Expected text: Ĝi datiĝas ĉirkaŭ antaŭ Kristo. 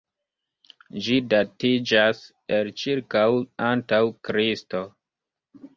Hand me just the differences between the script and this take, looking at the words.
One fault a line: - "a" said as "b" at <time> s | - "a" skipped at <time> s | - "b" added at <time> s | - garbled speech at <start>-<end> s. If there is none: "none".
- "el" added at 2.6 s